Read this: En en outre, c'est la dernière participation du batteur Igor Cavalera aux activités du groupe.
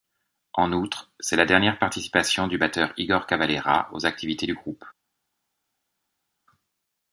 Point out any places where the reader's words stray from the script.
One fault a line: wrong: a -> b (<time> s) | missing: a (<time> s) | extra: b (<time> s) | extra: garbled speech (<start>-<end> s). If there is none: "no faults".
missing: en (0.7 s)